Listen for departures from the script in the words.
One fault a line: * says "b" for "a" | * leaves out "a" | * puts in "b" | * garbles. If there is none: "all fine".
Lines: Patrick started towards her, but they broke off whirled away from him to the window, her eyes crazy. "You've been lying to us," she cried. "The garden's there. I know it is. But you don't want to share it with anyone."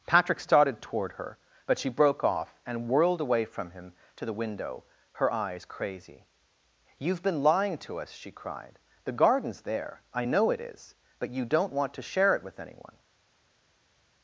* says "toward" for "towards"
* says "she" for "they"
* puts in "and"